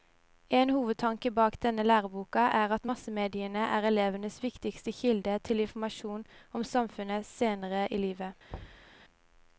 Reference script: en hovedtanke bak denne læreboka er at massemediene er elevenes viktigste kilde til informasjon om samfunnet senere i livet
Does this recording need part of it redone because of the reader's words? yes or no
no